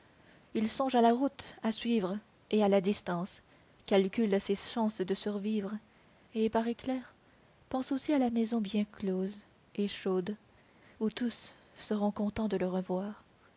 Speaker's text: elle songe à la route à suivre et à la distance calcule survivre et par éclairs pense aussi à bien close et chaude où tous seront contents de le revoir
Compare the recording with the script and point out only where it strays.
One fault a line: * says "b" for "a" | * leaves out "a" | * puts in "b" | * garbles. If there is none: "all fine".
* says "il" for "elle"
* puts in "ses chances de"
* puts in "la maison"